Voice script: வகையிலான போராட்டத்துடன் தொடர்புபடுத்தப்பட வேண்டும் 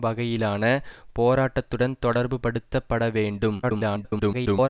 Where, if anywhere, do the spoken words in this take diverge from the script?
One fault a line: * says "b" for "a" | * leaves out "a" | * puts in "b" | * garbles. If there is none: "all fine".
* garbles